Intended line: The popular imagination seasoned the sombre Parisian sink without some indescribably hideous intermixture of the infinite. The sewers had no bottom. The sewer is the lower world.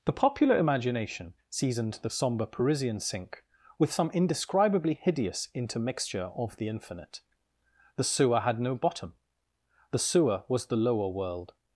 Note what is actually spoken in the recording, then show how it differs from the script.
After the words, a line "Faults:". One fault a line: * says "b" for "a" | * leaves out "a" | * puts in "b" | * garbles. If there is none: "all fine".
The popular imagination seasoned the sombre Parisian sink with some indescribably hideous intermixture of the infinite. The sewer had no bottom. The sewer was the lower world.
Faults:
* says "with" for "without"
* says "sewer" for "sewers"
* says "was" for "is"